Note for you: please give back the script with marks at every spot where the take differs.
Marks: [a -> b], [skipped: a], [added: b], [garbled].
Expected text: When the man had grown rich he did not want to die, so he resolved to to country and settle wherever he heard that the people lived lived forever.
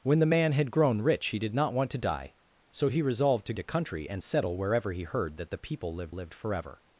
When the man had grown rich he did not want to die, so he resolved to to country and settle wherever he heard that the people lived lived forever.